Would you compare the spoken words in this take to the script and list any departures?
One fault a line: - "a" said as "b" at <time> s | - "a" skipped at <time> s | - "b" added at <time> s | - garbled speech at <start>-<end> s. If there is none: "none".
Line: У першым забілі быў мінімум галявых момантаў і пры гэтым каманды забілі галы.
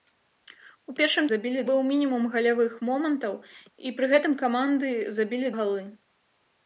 none